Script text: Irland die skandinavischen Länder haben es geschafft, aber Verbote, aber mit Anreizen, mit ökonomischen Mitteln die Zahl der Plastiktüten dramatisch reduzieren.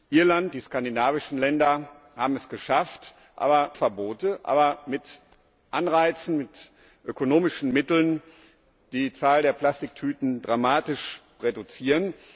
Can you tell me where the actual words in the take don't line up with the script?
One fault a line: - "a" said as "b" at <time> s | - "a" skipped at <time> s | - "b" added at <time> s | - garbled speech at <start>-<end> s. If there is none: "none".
none